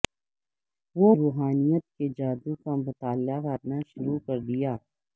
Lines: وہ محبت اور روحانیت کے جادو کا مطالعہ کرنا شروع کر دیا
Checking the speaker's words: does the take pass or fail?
fail